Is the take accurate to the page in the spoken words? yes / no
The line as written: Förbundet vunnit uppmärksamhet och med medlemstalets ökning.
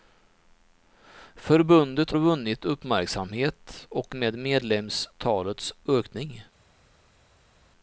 yes